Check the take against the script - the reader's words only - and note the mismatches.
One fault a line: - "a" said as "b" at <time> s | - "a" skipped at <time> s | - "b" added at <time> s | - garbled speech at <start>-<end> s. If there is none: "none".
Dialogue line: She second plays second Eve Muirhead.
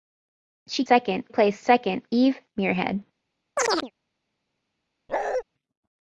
none